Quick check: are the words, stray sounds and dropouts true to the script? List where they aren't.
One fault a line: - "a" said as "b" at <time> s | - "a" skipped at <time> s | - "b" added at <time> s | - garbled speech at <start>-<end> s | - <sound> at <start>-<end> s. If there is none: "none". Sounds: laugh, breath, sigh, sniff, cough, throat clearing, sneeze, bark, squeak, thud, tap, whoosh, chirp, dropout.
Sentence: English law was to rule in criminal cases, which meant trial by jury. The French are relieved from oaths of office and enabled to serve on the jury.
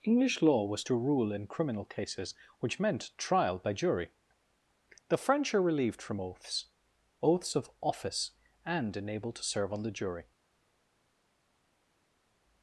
- "oaths" added at 7.2 s